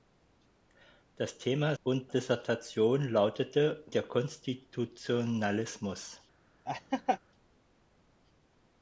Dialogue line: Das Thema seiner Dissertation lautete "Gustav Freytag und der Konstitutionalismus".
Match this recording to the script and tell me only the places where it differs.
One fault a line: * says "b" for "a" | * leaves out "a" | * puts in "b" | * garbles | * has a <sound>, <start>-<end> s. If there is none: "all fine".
* says "und" for "seiner"
* leaves out "Gustav Freytag und"
* has a laugh, 6.7-7.2 s